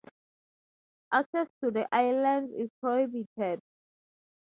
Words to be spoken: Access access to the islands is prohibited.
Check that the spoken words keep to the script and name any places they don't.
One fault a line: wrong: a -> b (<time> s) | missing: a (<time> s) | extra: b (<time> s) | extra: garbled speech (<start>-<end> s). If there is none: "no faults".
missing: access (1.5 s)